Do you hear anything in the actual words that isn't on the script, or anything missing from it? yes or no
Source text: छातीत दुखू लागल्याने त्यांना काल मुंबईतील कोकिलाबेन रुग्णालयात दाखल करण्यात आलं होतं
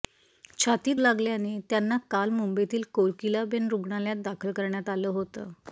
yes